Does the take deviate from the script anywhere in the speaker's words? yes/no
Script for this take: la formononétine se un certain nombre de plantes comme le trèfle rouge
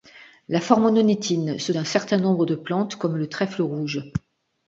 no